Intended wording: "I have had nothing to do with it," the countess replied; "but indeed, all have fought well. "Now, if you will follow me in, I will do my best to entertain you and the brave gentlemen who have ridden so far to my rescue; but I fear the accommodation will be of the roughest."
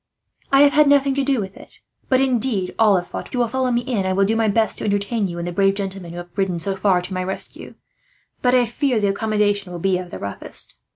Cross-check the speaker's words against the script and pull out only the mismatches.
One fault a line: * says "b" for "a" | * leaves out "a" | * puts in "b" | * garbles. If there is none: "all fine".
* leaves out "the countess replied"
* leaves out "well Now if"